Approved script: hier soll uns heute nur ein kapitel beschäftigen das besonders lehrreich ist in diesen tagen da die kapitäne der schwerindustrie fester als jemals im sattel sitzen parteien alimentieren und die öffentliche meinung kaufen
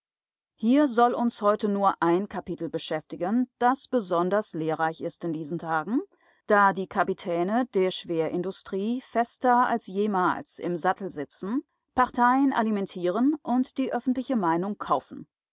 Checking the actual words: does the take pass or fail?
pass